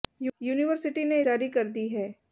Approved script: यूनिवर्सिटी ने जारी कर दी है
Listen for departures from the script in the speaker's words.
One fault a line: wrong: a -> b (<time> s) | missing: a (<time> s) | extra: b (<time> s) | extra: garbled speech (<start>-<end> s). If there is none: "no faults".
no faults